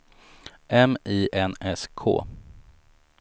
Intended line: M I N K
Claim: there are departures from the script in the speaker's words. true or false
true